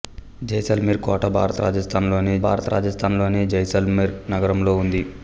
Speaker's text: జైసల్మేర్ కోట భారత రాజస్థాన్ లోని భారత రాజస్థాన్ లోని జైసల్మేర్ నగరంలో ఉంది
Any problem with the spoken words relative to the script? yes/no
no